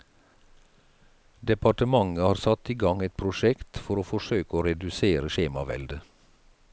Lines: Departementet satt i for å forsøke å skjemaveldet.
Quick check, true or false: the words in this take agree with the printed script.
false